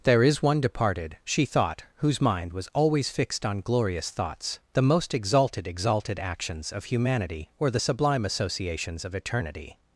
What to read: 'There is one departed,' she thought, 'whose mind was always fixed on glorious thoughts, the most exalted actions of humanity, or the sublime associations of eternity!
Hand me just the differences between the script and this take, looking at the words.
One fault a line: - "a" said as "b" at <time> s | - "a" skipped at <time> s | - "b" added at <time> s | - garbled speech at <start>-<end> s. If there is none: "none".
- "exalted" added at 5.7 s